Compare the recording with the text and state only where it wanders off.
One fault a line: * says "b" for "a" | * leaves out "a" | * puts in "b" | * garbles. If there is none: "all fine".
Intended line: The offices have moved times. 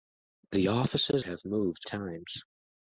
all fine